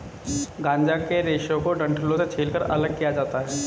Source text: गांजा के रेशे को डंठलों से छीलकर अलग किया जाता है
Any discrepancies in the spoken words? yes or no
no